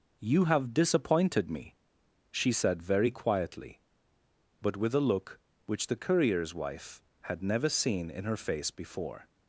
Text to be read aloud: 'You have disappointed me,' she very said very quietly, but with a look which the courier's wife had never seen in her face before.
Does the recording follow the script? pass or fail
fail